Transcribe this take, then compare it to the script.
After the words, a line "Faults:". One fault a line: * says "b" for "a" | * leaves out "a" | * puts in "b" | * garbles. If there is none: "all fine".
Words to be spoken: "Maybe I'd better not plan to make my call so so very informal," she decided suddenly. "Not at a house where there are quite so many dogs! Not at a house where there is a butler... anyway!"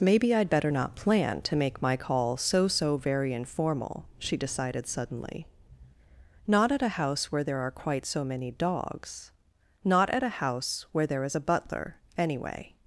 "Maybe I'd better not plan to make my call so so very informal," she decided suddenly. "Not at a house where there are quite so many dogs! Not at a house where there is a butler... anyway!"
Faults:
all fine